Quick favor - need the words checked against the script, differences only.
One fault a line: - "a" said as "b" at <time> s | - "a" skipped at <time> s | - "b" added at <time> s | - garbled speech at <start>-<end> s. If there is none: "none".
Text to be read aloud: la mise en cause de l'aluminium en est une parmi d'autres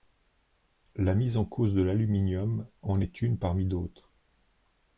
none